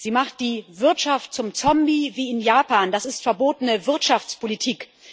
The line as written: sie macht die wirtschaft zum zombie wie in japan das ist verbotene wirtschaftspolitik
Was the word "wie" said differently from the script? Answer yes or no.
no